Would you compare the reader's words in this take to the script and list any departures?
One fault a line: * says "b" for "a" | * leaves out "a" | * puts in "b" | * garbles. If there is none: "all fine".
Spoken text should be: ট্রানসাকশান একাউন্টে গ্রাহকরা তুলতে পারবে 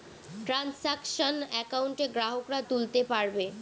all fine